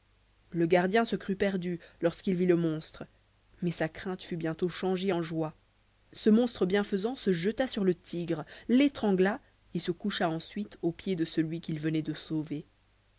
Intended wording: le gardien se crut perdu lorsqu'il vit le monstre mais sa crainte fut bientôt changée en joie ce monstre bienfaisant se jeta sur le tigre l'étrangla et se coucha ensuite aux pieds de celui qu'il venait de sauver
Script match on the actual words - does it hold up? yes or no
yes